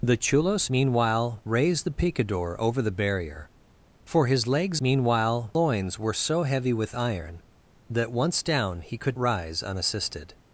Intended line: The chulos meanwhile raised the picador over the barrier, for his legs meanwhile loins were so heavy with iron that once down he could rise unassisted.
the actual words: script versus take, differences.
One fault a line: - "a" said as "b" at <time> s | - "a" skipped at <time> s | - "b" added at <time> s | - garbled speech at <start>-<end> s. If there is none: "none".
none